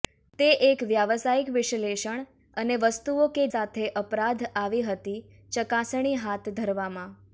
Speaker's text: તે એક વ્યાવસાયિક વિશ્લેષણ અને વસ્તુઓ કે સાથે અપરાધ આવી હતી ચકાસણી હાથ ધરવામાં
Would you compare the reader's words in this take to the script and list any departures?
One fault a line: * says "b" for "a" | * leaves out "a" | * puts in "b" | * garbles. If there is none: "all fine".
all fine